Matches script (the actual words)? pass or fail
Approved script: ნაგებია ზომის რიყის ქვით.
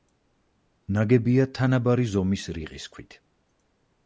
fail